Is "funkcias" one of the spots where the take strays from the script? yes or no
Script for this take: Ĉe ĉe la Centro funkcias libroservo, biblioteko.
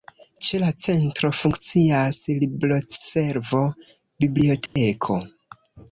no